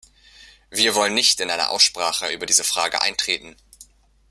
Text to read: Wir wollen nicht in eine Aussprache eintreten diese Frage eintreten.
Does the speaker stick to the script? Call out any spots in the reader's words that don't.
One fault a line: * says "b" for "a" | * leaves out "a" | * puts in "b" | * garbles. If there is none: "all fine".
* says "über" for "eintreten"